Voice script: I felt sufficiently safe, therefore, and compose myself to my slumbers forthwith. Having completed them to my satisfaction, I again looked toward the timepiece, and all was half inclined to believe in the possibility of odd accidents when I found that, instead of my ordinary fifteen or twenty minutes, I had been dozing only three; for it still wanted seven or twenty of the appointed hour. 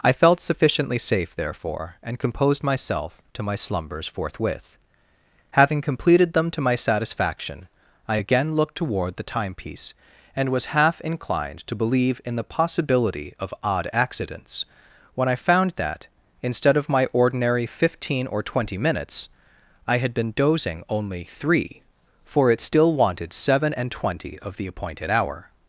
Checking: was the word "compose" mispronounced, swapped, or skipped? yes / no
yes